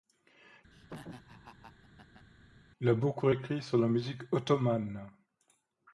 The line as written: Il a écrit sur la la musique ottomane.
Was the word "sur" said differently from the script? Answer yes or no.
no